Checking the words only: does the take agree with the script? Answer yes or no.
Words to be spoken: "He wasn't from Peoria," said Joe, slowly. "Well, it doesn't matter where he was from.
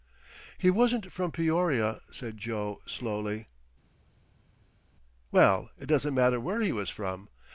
yes